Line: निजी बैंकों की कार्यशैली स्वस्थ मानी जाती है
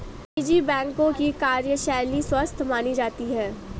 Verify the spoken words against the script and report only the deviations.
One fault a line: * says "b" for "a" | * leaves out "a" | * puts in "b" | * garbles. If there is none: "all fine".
all fine